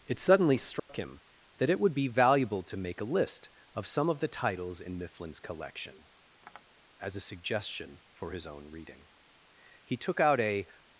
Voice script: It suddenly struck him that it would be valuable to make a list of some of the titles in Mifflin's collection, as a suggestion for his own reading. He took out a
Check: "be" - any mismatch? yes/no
no